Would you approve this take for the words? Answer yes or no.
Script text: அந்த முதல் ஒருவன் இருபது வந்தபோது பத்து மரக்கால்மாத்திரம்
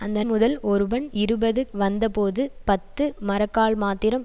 yes